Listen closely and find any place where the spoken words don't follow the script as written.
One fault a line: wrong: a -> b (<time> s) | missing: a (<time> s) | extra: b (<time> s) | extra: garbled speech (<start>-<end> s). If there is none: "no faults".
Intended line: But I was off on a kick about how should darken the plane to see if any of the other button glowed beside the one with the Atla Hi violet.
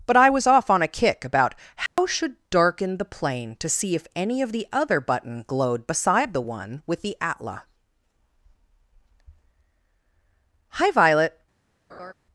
no faults